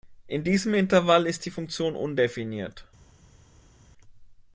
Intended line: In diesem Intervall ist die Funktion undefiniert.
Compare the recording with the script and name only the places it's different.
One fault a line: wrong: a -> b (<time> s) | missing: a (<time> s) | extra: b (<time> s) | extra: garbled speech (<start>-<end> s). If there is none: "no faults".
no faults